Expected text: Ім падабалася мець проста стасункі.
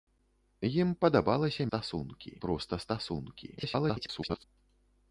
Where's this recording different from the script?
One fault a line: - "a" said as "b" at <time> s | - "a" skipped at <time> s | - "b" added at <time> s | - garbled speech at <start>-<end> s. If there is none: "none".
- "мець" said as "стасункі" at 1.7 s
- garbled speech at 3.6-4.4 s